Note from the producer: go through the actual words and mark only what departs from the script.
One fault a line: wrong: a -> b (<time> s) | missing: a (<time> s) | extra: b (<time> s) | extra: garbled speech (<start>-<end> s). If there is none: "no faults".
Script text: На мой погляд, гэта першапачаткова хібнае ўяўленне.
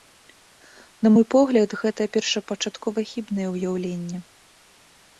no faults